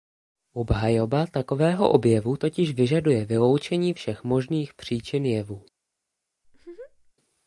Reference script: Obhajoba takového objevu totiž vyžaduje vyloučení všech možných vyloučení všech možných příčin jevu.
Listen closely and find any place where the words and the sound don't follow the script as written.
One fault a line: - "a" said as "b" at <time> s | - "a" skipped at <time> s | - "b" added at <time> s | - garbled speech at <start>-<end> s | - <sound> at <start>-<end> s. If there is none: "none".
- "vyloučení všech možných" skipped at 4.7 s
- laugh at 6.4-7.1 s